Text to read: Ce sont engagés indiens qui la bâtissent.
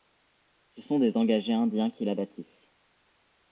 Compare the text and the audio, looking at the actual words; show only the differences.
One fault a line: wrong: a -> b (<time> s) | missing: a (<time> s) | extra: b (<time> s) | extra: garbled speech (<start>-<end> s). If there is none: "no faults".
extra: des (1.0 s)